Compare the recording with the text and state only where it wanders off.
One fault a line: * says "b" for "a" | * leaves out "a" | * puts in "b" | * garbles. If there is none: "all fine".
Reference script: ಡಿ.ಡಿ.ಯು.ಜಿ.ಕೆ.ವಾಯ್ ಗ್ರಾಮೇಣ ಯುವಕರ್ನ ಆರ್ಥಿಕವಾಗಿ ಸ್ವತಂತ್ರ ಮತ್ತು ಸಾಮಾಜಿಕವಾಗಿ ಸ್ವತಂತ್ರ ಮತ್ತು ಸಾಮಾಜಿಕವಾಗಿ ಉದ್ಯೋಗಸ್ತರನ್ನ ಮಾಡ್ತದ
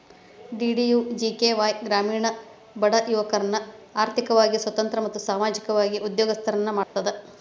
* puts in "ಬಡ"
* leaves out "ಸ್ವತಂತ್ರ ಮತ್ತು ಸಾಮಾಜಿಕವಾಗಿ"